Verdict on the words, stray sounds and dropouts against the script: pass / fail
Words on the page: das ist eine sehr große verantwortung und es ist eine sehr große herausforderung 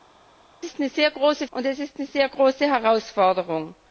fail